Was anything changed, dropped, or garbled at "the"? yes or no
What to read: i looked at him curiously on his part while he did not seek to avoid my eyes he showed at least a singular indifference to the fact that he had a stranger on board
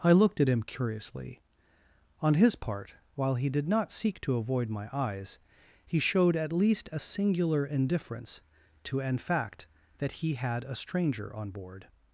yes